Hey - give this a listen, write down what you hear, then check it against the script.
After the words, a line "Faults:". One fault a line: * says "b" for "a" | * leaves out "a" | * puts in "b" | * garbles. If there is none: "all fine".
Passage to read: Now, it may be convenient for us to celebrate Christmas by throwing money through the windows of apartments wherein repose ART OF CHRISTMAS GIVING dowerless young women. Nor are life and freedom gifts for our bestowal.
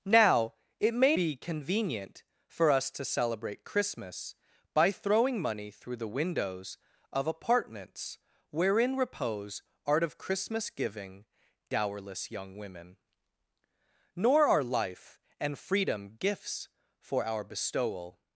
Now, it may be convenient for us to celebrate Christmas by throwing money through the windows of apartments wherein repose ART OF CHRISTMAS GIVING dowerless young women. Nor are life and freedom gifts for our bestowal.
Faults:
all fine